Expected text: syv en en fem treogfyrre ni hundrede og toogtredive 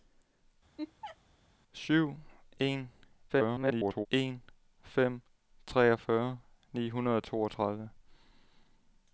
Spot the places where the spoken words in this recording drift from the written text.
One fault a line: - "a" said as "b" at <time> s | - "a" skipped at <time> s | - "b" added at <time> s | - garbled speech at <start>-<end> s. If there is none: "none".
- garbled speech at 3.3-4.1 s